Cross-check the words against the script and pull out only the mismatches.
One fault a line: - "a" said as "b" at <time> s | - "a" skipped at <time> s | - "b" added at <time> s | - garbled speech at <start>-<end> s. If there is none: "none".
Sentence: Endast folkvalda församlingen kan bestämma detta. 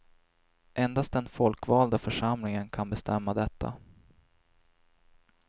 - "den" added at 1.1 s